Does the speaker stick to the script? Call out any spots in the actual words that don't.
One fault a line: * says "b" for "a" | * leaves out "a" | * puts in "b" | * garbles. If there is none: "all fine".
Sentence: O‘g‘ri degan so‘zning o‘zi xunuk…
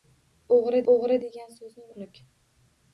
* puts in "o‘g‘ri"
* leaves out "o‘zi"